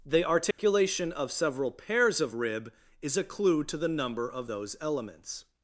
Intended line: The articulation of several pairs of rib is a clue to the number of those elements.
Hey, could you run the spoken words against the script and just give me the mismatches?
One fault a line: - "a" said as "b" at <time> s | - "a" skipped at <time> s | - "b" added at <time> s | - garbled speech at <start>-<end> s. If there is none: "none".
none